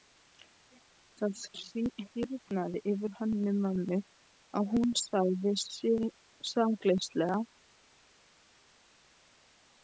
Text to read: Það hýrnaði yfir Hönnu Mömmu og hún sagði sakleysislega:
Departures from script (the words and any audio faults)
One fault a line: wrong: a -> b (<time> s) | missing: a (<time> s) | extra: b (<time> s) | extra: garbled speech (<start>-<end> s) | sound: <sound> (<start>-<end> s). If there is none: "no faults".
no faults